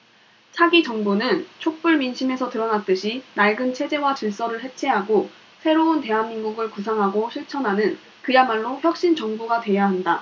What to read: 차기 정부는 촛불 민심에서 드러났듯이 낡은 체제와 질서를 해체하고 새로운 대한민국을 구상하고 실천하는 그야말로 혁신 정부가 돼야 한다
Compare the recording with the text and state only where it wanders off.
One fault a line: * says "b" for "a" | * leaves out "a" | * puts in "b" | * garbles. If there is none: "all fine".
all fine